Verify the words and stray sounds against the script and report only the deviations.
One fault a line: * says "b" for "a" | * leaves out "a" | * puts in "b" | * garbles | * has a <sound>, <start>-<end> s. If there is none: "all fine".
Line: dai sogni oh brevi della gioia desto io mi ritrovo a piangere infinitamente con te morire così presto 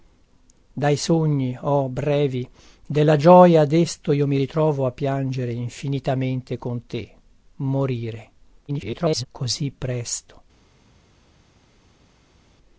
* garbles